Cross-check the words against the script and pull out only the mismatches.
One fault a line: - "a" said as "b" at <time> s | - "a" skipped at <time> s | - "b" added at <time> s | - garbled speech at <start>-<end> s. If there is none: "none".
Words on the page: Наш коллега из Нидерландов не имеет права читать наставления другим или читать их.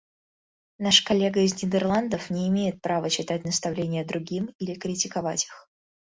- "читать" said as "критиковать" at 4.7 s